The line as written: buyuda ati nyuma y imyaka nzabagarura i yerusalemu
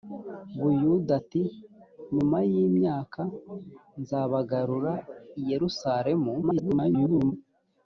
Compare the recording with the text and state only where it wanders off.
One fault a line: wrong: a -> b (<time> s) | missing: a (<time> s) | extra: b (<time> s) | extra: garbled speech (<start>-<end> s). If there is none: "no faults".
extra: garbled speech (6.4-7.3 s)